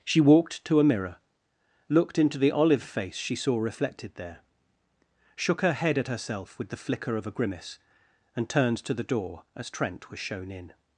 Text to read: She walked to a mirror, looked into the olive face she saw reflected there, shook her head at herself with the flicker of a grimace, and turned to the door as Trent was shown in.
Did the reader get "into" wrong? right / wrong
right